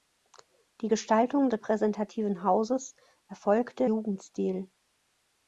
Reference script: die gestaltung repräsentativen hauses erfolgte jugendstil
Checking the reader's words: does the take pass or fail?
pass